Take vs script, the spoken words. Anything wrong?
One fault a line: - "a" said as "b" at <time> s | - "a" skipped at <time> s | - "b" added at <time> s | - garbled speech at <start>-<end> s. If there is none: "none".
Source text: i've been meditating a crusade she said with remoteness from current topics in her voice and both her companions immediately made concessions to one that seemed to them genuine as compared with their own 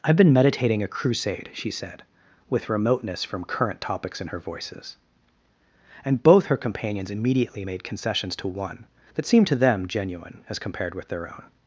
- "voice" said as "voices" at 4.4 s